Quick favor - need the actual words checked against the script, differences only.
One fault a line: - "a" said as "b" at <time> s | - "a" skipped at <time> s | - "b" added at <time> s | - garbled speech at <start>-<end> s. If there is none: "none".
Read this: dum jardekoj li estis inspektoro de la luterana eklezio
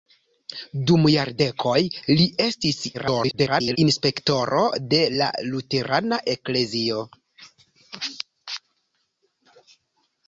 - garbled speech at 2.9-3.8 s